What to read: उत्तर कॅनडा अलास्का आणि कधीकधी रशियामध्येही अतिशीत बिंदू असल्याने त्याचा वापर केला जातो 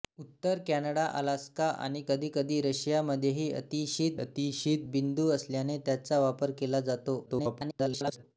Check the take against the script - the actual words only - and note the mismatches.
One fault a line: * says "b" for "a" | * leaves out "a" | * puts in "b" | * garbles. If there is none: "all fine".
* puts in "अतिशीत"
* garbles